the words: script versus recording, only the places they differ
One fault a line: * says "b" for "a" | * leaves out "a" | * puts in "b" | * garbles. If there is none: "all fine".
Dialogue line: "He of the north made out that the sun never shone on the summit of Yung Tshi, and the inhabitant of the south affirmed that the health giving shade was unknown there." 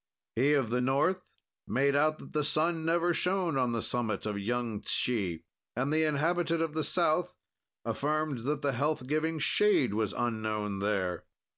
all fine